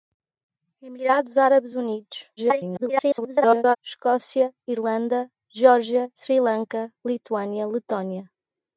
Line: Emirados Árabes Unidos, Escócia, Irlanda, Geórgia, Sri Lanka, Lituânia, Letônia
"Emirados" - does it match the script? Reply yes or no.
yes